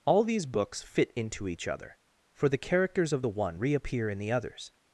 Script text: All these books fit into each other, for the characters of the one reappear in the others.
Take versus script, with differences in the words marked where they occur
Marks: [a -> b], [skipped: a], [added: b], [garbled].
All these books fit into each other, for the characters of the one reappear in the others.